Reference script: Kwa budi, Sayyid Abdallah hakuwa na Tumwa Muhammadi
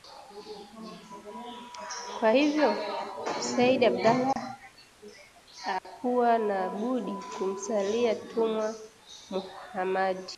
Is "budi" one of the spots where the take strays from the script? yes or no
yes